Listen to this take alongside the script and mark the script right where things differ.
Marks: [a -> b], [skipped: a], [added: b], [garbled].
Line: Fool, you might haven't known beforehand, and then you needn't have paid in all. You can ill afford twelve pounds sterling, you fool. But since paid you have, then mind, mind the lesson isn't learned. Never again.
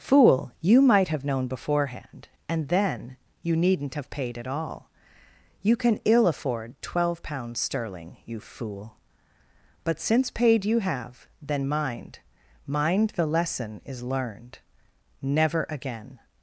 Fool, you might [haven't -> have] known beforehand, and then you needn't have paid [in -> at] all. You can ill afford twelve pounds sterling, you fool. But since paid you have, then mind, mind the lesson [isn't -> is] learned. Never again.